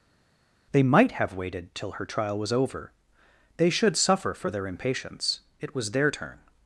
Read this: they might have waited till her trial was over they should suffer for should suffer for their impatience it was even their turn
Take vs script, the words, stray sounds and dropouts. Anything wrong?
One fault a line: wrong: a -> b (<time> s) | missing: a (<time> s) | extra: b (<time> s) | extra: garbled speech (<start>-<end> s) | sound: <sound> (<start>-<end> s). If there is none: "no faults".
missing: should suffer for (4.5 s)
missing: even (5.9 s)